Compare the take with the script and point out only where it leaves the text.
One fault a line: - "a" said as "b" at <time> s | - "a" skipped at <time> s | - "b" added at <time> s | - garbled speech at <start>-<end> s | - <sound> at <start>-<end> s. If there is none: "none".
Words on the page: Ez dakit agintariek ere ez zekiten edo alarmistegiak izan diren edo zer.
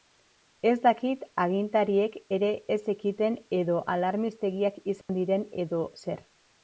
- dropout at 5.0-5.1 s